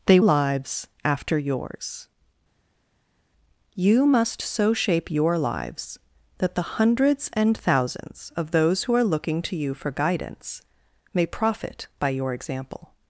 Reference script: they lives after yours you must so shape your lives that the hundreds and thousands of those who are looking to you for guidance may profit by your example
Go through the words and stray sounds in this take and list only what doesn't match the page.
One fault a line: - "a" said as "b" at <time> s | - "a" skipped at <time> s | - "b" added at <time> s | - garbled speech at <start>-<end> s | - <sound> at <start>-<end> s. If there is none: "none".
none